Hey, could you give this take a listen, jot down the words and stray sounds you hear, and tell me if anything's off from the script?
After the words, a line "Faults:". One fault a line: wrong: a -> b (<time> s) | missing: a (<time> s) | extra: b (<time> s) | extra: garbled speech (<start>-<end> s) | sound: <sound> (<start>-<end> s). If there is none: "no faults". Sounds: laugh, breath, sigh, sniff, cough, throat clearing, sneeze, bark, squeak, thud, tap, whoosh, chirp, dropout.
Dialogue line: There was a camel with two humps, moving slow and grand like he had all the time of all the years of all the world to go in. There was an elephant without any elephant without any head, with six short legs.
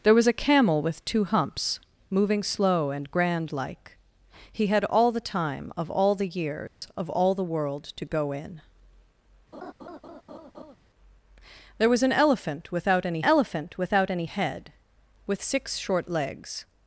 There was a camel with two humps, moving slow and grand like he had all the time of all the years of all the world to go in. There was an elephant without any elephant without any head, with six short legs.
Faults:
sound: dropout (6.7-6.8 s)
sound: laugh (9.5-10.8 s)